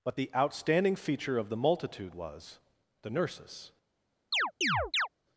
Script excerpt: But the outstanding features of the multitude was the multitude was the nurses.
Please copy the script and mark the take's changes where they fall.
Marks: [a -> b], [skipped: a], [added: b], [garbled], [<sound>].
But the outstanding [features -> feature] of the multitude was the [skipped: multitude was the] nurses. [chirp]